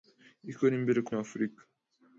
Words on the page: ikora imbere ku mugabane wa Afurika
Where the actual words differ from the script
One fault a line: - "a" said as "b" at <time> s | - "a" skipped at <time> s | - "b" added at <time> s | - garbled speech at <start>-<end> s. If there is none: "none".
- "mugabane" skipped at 1.1 s